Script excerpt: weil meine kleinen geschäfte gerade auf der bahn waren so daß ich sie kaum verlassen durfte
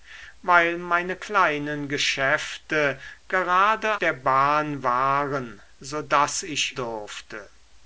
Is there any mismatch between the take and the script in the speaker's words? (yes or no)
yes